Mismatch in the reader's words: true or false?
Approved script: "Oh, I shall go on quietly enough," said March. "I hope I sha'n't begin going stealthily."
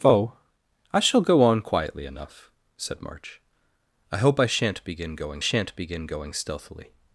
true